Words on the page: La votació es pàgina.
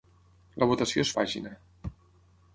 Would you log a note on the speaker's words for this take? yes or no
no